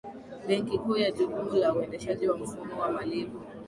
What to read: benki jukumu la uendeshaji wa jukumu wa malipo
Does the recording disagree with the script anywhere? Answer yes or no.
yes